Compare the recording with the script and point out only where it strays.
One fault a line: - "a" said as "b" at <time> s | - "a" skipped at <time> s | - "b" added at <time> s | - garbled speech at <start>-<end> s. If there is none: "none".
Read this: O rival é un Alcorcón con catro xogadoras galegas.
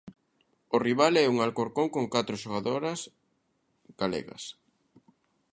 none